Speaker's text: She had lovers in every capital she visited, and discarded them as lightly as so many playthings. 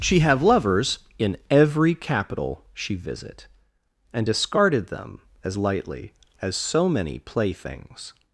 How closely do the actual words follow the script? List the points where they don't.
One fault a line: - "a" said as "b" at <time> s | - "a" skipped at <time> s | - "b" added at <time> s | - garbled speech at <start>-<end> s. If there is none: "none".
- "had" said as "have" at 0.2 s
- "visited" said as "visit" at 3.0 s